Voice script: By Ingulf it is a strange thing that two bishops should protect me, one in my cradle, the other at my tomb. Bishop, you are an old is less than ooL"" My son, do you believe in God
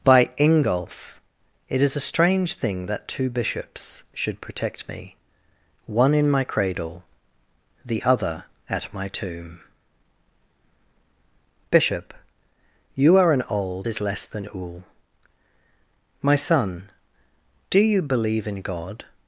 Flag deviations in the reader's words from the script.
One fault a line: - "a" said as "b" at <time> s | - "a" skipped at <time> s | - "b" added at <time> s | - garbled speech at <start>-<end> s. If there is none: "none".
none